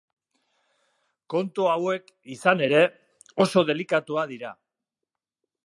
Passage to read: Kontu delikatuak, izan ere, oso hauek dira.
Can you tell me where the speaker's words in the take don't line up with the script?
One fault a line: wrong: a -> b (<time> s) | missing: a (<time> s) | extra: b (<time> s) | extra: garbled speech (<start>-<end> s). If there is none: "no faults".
wrong: delikatuak -> hauek (1.7 s)
wrong: hauek -> delikatuak (3.7 s)